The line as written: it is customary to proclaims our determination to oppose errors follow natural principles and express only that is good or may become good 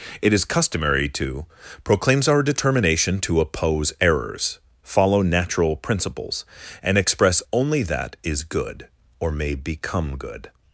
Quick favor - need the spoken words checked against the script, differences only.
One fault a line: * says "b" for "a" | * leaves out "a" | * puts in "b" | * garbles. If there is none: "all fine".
all fine